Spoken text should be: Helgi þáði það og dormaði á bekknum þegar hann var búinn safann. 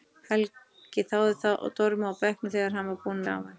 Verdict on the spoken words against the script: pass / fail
pass